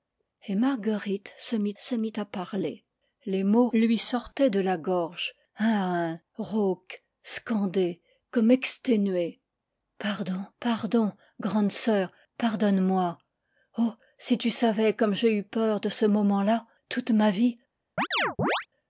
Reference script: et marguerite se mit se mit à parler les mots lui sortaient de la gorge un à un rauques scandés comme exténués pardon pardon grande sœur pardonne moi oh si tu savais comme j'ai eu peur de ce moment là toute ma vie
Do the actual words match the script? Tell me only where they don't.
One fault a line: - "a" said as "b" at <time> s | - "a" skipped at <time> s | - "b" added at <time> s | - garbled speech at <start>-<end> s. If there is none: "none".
none